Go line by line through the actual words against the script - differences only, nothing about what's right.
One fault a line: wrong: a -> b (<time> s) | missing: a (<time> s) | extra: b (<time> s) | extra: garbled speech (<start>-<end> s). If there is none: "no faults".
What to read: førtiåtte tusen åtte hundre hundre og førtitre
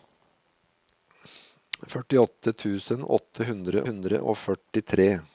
no faults